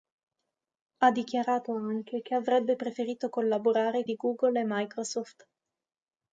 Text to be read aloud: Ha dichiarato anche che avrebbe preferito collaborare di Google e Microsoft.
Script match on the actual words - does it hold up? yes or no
yes